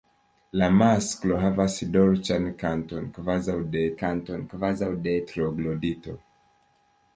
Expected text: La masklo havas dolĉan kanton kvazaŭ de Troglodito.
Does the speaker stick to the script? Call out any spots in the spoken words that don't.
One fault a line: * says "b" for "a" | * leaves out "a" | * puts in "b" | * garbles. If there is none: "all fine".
* puts in "kanton kvazaŭ de"